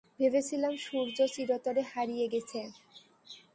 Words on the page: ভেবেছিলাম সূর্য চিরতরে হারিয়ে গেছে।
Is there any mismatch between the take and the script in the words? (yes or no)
no